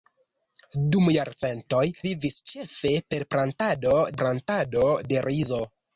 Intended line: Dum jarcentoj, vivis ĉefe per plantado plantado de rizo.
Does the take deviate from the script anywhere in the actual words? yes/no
no